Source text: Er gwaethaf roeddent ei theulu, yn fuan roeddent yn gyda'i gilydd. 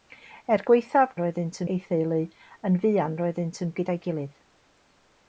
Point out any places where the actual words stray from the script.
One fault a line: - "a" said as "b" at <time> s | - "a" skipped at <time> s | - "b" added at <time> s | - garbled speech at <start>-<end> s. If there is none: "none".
none